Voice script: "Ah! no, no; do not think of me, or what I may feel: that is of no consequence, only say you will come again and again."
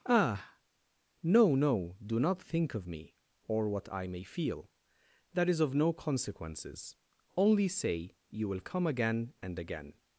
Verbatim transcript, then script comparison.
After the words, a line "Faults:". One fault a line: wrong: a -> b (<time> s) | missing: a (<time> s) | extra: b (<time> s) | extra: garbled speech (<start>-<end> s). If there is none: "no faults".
"Ah! no, no; do not think of me, or what I may feel: that is of no consequences, only say you will come again and again."
Faults:
wrong: consequence -> consequences (5.9 s)